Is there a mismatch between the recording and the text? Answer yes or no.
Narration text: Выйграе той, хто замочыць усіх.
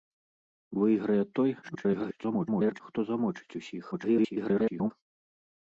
yes